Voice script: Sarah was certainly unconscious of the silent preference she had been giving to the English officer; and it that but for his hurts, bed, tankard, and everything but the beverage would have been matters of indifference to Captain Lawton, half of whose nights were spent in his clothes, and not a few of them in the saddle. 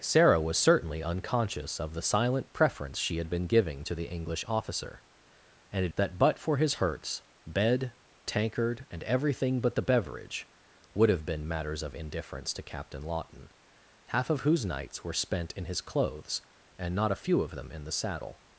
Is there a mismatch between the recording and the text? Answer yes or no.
no